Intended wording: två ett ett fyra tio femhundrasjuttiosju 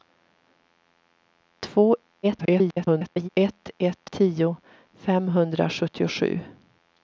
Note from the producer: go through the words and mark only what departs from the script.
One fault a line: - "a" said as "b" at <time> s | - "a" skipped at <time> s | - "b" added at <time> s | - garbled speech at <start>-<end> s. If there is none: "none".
- garbled speech at 2.2-3.3 s
- "fyra" skipped at 4.1 s